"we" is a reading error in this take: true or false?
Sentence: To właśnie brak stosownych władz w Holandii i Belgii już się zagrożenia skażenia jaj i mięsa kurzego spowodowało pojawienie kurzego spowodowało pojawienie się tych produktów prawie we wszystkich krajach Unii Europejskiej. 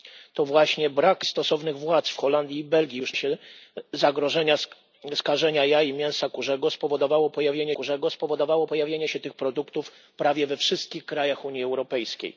false